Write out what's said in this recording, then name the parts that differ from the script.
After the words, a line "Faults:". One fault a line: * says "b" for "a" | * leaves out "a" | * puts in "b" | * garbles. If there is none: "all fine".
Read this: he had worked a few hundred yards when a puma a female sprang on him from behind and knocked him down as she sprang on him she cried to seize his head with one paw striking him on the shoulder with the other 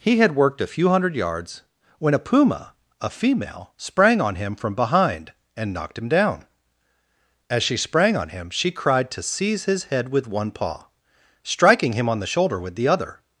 he had worked a few hundred yards when a puma a female sprang on him from behind and knocked him down as she sprang on him she cried to seize his head with one paw striking him on the shoulder with the other
Faults:
all fine